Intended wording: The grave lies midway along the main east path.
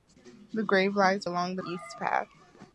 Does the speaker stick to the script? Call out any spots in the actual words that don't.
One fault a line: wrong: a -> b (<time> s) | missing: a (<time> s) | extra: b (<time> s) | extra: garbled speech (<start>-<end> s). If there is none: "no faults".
missing: midway (1.3 s)
missing: main (1.6 s)